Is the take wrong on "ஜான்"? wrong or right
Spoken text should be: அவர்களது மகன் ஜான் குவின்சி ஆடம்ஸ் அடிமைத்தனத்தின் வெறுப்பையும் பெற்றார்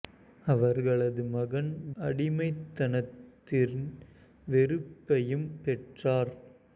wrong